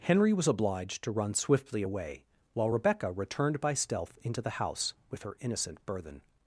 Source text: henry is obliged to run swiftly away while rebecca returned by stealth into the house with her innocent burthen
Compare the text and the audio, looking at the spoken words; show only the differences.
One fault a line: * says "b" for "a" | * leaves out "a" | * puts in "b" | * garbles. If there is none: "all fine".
* says "was" for "is"